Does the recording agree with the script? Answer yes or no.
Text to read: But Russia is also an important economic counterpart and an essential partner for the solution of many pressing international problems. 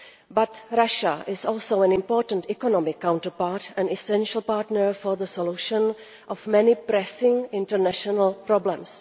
yes